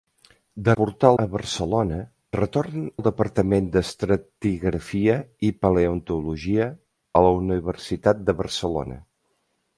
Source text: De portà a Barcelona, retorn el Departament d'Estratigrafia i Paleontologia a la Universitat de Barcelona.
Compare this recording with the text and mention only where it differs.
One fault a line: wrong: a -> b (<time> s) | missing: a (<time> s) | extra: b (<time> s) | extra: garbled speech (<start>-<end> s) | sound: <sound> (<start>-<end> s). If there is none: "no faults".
no faults